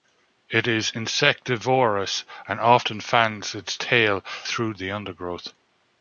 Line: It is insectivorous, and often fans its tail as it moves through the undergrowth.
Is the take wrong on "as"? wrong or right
wrong